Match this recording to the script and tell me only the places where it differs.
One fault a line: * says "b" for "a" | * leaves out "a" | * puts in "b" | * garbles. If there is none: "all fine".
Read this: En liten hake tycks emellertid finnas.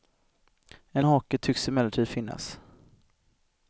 * leaves out "liten"